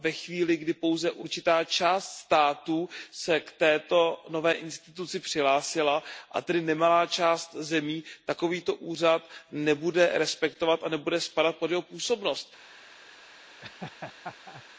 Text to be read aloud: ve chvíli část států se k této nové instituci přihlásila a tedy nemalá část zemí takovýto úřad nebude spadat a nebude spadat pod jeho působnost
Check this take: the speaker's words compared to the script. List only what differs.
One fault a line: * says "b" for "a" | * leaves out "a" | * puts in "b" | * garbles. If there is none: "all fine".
* puts in "kdy pouze určitá"
* says "respektovat" for "spadat"